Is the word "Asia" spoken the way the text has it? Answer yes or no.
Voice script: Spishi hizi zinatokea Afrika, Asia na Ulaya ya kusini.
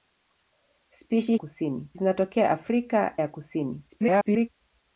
no